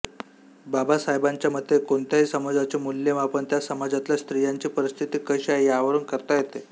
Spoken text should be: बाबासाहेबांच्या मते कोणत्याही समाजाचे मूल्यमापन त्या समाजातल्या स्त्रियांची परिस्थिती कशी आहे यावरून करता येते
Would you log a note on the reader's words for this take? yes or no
no